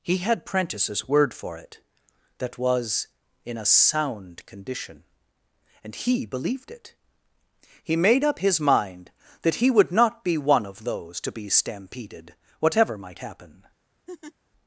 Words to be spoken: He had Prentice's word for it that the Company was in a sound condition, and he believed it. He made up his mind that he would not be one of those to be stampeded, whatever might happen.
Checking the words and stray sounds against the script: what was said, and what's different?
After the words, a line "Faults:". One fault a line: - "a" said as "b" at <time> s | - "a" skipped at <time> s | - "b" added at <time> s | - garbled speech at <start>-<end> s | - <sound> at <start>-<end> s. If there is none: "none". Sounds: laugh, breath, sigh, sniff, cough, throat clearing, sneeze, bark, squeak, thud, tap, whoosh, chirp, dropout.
He had Prentice's word for it that was in a sound condition, and he believed it. He made up his mind that he would not be one of those to be stampeded, whatever might happen.
Faults:
- "the Company" skipped at 2.6 s
- laugh at 14.1-14.3 s